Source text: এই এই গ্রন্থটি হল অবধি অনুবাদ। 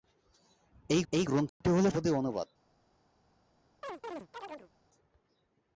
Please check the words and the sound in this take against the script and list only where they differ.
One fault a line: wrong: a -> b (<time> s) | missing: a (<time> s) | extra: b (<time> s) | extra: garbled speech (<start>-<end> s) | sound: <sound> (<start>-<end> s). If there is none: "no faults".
sound: dropout (1.5-1.6 s)
sound: chirp (3.8-4.7 s)